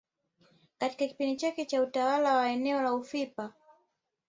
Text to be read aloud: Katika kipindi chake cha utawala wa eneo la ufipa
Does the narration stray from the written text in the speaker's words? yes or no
no